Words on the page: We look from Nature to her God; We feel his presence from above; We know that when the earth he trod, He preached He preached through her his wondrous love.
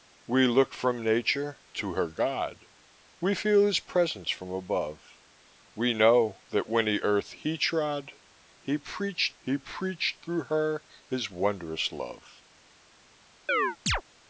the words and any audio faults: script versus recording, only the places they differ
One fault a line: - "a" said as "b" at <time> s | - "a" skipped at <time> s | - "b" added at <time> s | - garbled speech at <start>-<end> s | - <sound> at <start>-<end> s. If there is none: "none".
- chirp at 13.5-14.0 s